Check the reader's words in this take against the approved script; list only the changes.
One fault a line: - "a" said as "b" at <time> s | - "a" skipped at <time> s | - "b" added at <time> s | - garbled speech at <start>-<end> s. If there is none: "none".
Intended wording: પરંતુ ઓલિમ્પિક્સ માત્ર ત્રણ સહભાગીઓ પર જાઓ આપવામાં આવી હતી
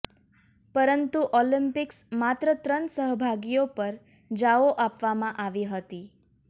none